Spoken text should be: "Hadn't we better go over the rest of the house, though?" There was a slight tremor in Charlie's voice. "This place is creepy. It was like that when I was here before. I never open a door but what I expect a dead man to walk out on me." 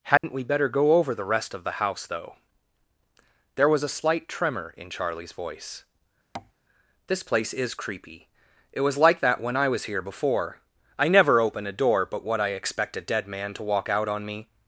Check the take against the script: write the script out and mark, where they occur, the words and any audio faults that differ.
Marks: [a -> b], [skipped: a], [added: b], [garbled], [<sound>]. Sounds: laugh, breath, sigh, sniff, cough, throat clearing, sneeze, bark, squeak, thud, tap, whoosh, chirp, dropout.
"Hadn't [dropout] we better go over the rest of the house, though?" There was a slight tremor in Charlie's voice. [tap] "This place is creepy. It was like that when I was here before. I never open a door but what I expect a dead man to walk out on me."